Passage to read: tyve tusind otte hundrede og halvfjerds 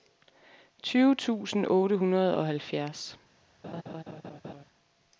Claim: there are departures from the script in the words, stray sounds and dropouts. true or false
true